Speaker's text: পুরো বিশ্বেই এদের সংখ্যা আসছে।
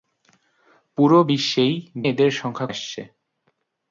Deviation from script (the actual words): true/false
false